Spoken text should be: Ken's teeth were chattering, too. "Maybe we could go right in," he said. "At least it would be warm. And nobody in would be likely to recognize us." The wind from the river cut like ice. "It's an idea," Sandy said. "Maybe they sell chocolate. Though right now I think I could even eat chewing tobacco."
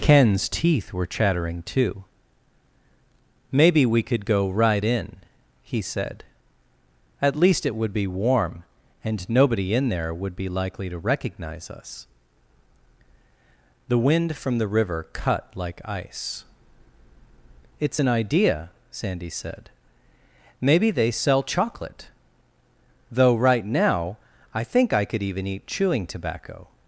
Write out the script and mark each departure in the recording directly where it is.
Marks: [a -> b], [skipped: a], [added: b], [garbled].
Ken's teeth were chattering, too. "Maybe we could go right in," he said. "At least it would be warm. And nobody in [added: there] would be likely to recognize us." The wind from the river cut like ice. "It's an idea," Sandy said. "Maybe they sell chocolate. Though right now I think I could even eat chewing tobacco."